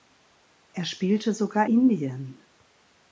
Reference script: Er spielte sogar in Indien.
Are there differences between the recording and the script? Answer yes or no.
yes